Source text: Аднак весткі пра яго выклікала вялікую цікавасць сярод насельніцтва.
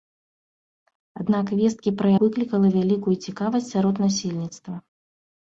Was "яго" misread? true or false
true